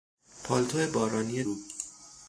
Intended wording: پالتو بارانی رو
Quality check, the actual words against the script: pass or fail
pass